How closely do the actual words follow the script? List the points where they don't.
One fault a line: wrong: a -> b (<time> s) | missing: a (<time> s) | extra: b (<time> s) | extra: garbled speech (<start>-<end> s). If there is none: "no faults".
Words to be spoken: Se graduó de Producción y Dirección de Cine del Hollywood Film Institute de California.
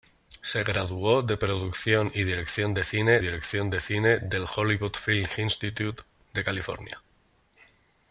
extra: Dirección de Cine (3.2 s)